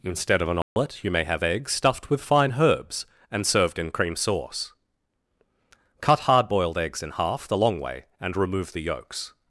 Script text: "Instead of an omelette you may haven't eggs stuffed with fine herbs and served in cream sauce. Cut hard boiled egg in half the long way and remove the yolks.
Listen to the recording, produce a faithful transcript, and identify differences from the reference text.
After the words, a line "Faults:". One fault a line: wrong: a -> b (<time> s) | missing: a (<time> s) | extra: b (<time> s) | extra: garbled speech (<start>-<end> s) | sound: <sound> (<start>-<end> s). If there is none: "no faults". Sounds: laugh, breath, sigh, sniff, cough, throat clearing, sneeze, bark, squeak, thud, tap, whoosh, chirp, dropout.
"Instead of an omelette you may have eggs stuffed with fine herbs and served in cream sauce. Cut hard boiled eggs in half the long way and remove the yolks.
Faults:
sound: dropout (0.6-0.8 s)
wrong: haven't -> have (1.2 s)
wrong: egg -> eggs (6.8 s)